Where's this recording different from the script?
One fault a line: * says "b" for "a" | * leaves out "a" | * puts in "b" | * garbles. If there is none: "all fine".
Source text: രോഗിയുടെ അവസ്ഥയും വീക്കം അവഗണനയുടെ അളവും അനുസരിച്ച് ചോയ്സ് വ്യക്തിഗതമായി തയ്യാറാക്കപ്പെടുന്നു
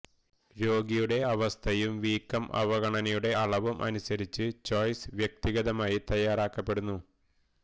all fine